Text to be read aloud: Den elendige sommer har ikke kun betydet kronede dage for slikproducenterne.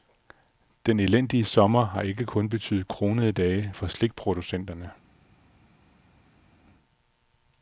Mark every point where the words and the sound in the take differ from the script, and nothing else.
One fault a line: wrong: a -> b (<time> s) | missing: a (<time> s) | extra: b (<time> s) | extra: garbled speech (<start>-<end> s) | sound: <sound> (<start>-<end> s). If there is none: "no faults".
no faults